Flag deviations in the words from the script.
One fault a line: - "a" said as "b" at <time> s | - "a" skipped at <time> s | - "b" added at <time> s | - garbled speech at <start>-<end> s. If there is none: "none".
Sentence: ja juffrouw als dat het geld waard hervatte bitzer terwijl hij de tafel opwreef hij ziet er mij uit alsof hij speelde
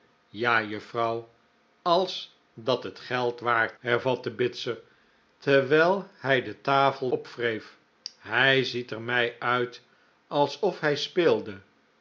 none